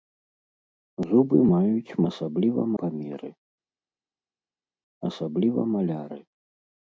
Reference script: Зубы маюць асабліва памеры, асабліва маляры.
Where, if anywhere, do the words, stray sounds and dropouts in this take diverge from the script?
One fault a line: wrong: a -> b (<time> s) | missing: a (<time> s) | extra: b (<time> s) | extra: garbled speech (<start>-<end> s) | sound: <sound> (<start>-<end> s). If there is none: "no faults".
no faults